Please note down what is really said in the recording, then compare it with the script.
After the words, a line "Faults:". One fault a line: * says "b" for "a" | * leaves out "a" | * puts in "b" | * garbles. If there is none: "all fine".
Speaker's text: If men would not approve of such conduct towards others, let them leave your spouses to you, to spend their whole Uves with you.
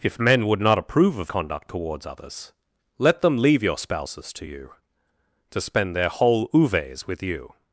If men would not approve of conduct towards others, let them leave your spouses to you, to spend their whole Uves with you.
Faults:
* leaves out "such"